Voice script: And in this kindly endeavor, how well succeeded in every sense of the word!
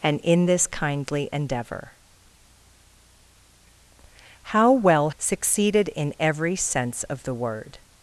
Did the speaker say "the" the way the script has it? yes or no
yes